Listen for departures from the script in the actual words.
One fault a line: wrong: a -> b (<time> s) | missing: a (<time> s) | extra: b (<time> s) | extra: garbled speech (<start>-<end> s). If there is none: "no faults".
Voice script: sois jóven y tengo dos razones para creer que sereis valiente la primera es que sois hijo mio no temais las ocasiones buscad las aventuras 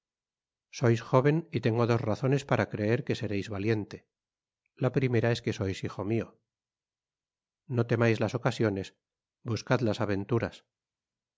no faults